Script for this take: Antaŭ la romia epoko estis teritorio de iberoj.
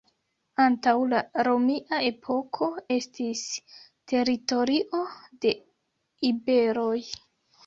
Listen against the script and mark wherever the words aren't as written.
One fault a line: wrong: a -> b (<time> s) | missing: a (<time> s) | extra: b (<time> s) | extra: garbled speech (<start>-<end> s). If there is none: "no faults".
no faults